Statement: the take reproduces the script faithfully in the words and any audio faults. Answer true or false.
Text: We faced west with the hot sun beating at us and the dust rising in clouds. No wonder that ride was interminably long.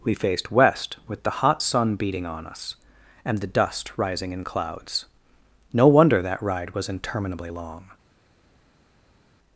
false